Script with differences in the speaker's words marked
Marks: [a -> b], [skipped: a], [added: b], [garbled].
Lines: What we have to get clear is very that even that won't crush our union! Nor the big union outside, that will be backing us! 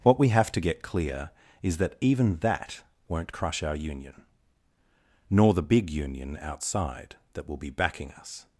What we have to get clear is [skipped: very] that even that won't crush our union! Nor the big union outside, that will be backing us!